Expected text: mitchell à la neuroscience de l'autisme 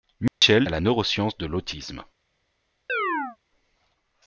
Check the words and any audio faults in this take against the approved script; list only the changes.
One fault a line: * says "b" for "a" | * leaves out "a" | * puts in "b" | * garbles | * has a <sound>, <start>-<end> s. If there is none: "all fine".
* has a dropout, 0.3-0.4 s
* has a chirp, 2.9-3.4 s